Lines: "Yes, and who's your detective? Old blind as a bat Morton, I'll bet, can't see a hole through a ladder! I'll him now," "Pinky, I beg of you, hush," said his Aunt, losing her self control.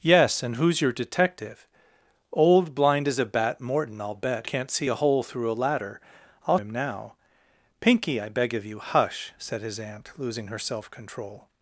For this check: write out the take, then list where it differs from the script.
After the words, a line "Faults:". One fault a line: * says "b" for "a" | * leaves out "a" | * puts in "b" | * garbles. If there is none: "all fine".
"Yes, and who's your detective? Old blind as a bat Morton, I'll bet, can't see a hole through a ladder! I'll him now," "Pinky, I beg of you, hush," said his Aunt, losing her self control.
Faults:
all fine